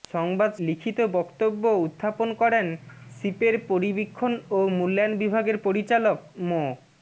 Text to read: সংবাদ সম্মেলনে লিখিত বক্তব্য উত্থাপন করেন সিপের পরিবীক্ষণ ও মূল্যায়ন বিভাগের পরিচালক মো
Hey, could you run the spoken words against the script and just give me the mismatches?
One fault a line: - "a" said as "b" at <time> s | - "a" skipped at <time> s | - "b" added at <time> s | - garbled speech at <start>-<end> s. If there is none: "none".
- "সম্মেলনে" skipped at 0.5 s